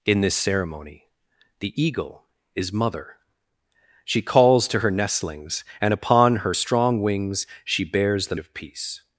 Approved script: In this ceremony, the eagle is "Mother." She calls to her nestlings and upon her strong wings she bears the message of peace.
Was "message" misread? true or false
true